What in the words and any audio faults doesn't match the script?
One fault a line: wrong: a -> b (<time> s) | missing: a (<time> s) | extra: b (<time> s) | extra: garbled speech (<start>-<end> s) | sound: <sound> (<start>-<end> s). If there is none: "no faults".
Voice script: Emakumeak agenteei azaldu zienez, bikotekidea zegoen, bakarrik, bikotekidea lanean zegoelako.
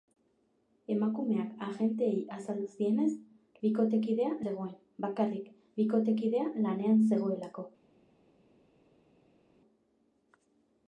no faults